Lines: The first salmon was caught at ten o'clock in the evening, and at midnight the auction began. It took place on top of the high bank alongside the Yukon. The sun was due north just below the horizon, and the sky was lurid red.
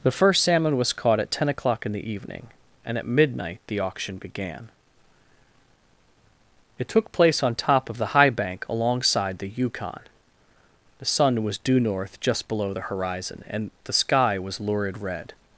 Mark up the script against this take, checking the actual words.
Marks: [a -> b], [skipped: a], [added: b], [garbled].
The first salmon was caught at ten o'clock in the evening, and at midnight the auction began. It took place on top of the high bank alongside the Yukon. The sun was due north just below the horizon, and the sky was lurid red.